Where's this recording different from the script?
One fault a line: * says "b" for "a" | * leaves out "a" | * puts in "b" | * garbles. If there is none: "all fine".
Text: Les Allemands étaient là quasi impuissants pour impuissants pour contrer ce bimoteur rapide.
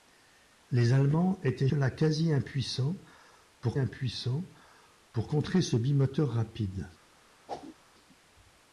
all fine